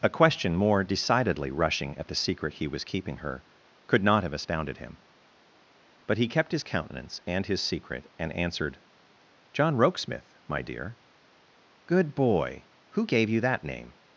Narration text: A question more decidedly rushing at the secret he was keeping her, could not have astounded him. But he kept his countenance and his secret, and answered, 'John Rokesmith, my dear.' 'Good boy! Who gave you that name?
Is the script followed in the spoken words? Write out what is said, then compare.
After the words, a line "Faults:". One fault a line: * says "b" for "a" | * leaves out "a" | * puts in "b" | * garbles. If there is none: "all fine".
A question more decidedly rushing at the secret he was keeping her, could not have astounded him. But he kept his countenance and his secret, and answered, 'John Rokesmith, my dear.' 'Good boy! Who gave you that name?
Faults:
all fine